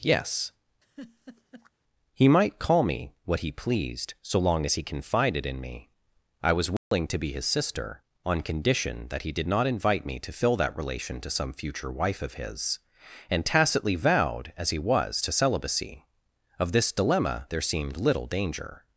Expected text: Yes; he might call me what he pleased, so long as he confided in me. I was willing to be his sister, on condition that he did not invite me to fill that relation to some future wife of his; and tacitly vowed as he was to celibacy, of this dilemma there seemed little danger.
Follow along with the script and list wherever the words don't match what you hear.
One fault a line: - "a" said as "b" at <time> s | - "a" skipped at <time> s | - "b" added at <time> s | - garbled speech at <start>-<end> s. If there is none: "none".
none